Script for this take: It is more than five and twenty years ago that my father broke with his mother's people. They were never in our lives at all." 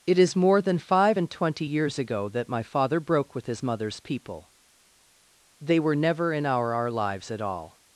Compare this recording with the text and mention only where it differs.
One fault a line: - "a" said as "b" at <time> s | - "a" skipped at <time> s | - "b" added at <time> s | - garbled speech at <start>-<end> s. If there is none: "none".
- "our" added at 6.7 s